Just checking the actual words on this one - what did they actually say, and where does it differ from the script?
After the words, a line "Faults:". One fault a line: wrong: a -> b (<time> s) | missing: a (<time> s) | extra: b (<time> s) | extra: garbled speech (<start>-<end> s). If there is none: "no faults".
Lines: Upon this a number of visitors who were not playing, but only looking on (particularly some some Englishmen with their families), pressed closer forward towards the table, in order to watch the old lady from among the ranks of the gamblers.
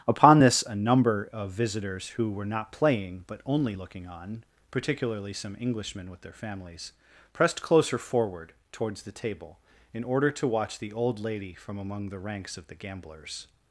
Upon this a number of visitors who were not playing, but only looking on (particularly some Englishmen with their families), pressed closer forward towards the table, in order to watch the old lady from among the ranks of the gamblers.
Faults:
missing: some (5.6 s)